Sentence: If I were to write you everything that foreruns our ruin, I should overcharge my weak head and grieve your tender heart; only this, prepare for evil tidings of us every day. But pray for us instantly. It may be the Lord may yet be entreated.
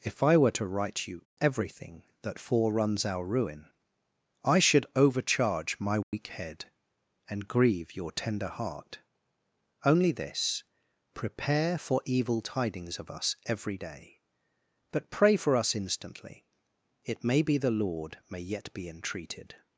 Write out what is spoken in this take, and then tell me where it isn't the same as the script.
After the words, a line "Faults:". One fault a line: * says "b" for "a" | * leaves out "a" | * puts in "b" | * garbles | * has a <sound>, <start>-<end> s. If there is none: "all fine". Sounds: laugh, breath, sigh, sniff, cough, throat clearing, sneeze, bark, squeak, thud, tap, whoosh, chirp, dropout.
If I were to write you everything that foreruns our ruin, I should overcharge my weak head and grieve your tender heart; only this, prepare for evil tidings of us every day. But pray for us instantly. It may be the Lord may yet be entreated.
Faults:
* has a dropout, 6.0-6.1 s